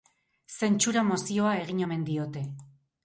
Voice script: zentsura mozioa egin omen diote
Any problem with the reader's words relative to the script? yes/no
no